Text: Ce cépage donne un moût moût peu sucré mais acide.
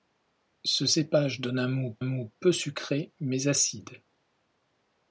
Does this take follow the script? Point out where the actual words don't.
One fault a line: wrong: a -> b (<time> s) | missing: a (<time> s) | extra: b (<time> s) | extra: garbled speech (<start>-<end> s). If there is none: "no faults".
no faults